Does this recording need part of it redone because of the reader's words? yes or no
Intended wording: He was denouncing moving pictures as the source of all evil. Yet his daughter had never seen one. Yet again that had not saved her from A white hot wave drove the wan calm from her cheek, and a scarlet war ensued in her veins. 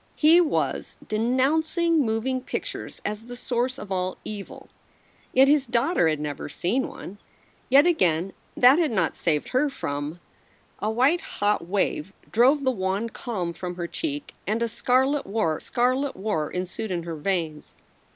yes